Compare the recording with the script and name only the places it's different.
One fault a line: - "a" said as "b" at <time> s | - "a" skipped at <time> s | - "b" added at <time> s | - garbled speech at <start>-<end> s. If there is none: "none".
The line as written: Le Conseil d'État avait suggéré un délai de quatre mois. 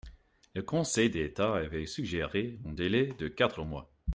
none